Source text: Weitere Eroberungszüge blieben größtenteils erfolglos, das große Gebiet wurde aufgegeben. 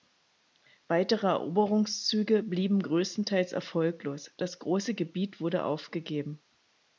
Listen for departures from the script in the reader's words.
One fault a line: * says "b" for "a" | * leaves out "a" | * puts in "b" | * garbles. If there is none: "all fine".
all fine